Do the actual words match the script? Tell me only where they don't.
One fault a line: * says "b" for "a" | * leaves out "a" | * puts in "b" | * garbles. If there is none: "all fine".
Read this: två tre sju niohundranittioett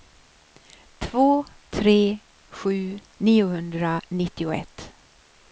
all fine